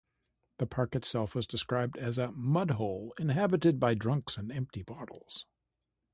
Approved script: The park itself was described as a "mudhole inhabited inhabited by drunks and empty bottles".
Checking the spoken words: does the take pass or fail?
fail